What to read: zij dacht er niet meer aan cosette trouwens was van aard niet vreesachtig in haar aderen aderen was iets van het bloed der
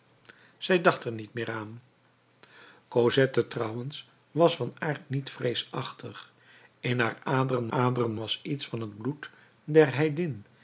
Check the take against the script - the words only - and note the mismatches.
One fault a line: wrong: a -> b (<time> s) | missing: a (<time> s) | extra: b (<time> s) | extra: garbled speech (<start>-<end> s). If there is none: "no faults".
no faults